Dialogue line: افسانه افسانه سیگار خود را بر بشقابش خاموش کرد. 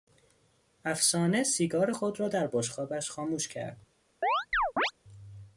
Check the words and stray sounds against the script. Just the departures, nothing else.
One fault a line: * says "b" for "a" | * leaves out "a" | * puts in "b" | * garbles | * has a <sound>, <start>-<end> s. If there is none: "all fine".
* leaves out "افسانه"
* says "در" for "بر"
* has a chirp, 4.2-4.9 s